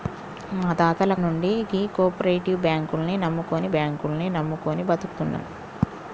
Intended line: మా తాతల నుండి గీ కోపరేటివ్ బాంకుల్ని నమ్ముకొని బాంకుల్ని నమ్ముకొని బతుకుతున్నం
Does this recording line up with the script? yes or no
yes